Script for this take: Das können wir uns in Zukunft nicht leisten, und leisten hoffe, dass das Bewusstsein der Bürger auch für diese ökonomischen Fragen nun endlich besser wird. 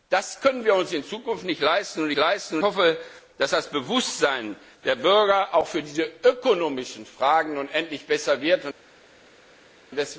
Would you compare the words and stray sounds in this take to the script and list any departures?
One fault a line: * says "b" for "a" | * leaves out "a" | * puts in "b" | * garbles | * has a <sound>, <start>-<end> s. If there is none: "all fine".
all fine